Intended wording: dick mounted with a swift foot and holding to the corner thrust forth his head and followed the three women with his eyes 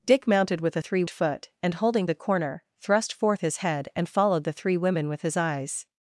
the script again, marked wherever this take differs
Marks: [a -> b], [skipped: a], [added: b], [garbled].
dick mounted with a [swift -> three] foot and holding [skipped: to] the corner thrust forth his head and followed the three women with his eyes